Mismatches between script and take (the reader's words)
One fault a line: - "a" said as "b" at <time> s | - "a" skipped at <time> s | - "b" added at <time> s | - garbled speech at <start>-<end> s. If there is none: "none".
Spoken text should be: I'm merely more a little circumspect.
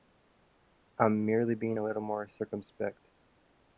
- "more" said as "being" at 1.5 s
- "more" added at 2.0 s